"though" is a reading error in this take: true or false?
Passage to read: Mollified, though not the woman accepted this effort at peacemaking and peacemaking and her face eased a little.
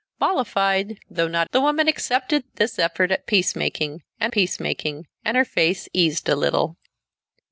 false